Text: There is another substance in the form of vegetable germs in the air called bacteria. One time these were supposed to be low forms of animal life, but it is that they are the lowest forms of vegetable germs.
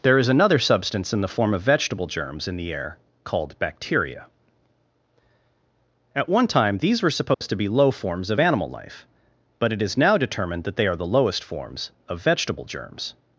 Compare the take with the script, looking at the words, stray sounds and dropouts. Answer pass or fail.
fail